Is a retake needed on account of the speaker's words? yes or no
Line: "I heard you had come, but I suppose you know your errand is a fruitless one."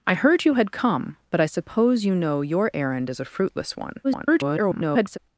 yes